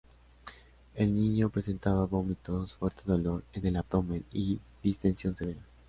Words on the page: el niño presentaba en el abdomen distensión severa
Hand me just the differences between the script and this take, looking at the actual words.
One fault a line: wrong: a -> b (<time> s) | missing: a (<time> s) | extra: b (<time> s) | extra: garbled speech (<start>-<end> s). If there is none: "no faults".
extra: vómitos fuerte dolor (2.0 s)
extra: y (4.3 s)